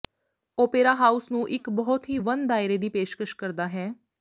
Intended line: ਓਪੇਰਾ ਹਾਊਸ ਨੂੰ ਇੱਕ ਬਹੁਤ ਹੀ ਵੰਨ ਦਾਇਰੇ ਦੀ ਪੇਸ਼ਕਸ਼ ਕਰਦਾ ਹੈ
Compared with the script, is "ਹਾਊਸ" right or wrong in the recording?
right